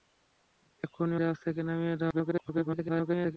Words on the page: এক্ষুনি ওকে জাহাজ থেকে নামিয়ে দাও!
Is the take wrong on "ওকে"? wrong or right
wrong